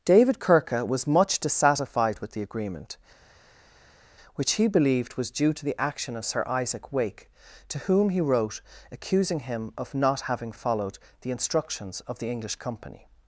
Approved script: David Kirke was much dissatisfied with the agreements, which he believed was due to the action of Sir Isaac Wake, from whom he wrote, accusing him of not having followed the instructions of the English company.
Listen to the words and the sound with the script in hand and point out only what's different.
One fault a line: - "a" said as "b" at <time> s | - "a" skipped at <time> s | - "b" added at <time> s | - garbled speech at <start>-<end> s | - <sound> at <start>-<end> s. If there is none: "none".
- "agreements" said as "agreement" at 2.4 s
- "from" said as "to" at 7.7 s